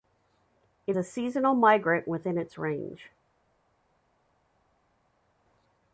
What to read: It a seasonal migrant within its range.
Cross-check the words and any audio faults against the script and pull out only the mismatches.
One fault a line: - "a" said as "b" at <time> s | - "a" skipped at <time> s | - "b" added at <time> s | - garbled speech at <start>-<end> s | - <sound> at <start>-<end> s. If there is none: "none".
none